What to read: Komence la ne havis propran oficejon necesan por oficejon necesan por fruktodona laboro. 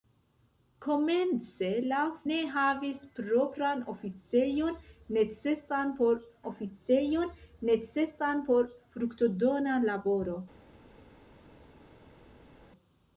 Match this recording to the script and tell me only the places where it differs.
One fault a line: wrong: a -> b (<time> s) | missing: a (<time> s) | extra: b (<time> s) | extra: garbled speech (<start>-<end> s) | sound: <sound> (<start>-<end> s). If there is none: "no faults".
no faults